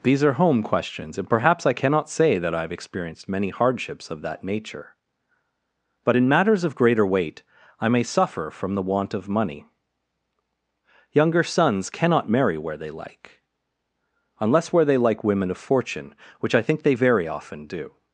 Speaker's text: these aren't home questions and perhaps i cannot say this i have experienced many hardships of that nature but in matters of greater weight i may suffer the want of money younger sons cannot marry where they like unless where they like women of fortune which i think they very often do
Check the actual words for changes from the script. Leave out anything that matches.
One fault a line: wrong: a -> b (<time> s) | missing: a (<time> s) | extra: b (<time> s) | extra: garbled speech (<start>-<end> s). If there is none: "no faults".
wrong: aren't -> are (0.2 s)
wrong: this -> that (2.4 s)
extra: from (8.5 s)